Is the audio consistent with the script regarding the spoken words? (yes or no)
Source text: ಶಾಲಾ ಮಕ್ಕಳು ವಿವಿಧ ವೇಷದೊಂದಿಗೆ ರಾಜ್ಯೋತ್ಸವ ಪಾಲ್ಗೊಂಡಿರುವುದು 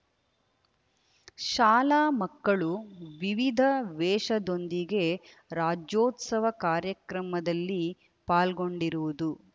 no